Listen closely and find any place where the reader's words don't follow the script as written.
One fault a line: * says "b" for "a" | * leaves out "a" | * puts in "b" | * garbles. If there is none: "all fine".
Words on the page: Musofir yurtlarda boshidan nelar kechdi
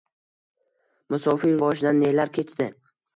* leaves out "yurtlarda"